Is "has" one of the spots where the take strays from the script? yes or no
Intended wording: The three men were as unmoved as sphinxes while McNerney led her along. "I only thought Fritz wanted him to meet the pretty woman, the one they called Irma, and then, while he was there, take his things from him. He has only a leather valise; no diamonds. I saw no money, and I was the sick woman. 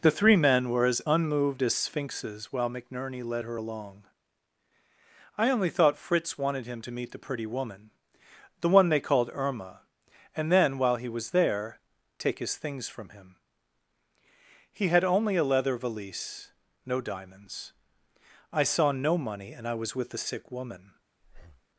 yes